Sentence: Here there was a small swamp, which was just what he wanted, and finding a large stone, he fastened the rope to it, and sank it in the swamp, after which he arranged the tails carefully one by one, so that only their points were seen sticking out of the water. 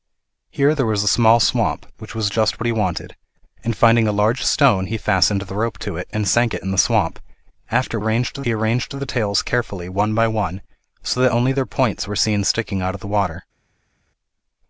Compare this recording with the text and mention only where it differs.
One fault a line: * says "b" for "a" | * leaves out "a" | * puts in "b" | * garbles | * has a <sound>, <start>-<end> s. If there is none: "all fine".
* says "arranged" for "which"